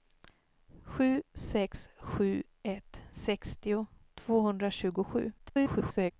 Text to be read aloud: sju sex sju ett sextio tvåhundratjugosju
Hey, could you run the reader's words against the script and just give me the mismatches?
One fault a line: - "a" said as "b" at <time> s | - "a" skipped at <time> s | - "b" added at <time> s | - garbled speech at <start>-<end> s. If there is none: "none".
- garbled speech at 5.4-6.1 s